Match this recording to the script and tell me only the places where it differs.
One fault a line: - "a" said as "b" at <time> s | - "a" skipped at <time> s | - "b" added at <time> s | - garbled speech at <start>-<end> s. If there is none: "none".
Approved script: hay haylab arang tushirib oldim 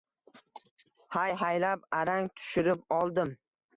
none